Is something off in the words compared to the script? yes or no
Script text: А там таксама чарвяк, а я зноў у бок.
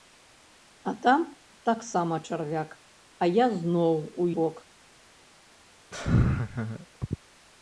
no